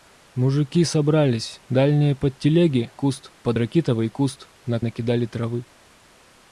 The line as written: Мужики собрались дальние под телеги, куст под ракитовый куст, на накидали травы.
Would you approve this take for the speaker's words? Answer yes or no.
yes